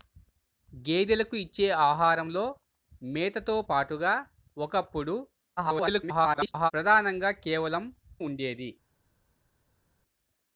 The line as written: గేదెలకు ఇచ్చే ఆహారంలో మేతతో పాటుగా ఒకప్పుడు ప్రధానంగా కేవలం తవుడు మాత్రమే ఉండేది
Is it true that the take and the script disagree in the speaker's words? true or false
true